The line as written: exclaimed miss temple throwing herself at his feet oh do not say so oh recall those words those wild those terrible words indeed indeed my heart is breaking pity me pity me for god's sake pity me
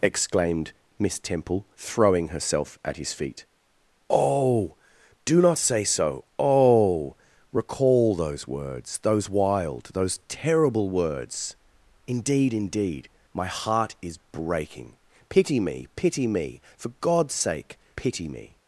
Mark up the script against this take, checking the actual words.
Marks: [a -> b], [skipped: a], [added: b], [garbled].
exclaimed miss temple throwing herself at his feet oh do not say so oh recall those words those wild those terrible words indeed indeed my heart is breaking pity me pity me for god's sake pity me